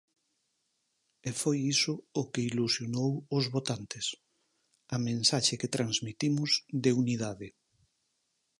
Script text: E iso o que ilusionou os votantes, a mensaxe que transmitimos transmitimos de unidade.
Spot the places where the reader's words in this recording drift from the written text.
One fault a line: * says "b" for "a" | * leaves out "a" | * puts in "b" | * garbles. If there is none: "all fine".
* puts in "foi"
* leaves out "transmitimos"